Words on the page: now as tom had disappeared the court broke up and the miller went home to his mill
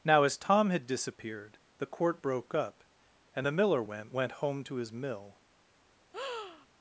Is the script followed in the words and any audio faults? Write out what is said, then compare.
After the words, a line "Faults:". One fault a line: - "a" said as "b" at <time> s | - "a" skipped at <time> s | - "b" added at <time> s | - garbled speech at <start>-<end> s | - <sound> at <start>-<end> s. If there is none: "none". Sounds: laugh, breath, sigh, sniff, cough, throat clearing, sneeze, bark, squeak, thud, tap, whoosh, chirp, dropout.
now as tom had disappeared the court broke up and the miller went went home to his mill
Faults:
- "went" added at 4.1 s
- breath at 6.1-6.7 s